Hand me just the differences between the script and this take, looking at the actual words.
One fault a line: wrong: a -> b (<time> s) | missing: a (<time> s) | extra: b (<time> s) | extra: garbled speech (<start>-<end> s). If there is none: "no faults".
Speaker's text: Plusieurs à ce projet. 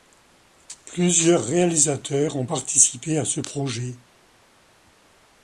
extra: réalisateurs ont participé (1.4 s)